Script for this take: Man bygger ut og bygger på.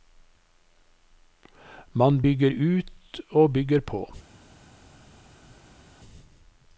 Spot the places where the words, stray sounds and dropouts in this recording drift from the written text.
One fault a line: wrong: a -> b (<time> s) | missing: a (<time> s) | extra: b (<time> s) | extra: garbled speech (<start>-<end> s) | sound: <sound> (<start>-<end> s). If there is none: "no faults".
no faults